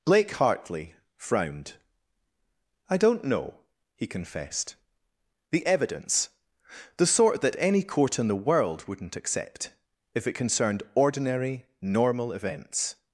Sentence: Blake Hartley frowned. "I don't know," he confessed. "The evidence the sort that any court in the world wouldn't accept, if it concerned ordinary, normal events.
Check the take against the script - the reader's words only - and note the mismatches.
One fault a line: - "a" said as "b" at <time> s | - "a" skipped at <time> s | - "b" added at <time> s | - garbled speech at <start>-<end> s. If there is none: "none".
none